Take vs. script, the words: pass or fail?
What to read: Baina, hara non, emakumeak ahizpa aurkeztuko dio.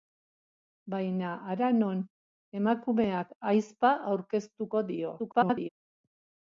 fail